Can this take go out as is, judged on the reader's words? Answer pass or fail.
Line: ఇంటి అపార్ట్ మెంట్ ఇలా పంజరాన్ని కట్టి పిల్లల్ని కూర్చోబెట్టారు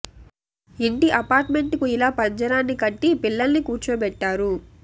fail